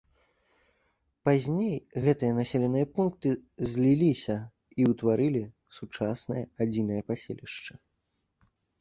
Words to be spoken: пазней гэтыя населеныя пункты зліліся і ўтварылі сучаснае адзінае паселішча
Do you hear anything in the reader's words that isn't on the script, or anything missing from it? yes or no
no